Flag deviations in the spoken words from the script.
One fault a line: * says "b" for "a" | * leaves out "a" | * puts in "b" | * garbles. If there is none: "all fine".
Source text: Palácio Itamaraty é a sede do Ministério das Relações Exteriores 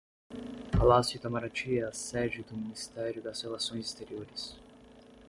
all fine